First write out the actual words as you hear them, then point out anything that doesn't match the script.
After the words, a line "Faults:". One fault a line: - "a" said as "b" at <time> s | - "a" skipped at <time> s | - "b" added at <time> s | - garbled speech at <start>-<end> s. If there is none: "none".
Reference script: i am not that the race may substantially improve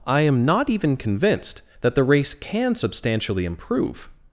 i am not even convinced that the race can substantially improve
Faults:
- "even convinced" added at 0.7 s
- "may" said as "can" at 2.3 s